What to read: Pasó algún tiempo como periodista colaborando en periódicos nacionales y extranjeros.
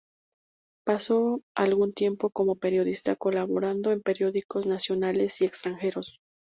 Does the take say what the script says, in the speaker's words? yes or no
yes